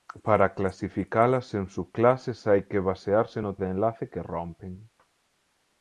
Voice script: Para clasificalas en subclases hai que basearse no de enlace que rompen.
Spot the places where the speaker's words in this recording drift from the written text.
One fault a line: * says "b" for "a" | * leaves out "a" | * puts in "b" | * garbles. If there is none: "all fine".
all fine